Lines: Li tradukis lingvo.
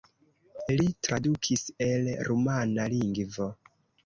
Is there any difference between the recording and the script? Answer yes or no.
yes